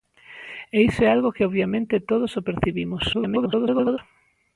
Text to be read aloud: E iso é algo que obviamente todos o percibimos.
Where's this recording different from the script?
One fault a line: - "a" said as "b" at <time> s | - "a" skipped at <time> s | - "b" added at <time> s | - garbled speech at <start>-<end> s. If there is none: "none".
- garbled speech at 3.1-4.0 s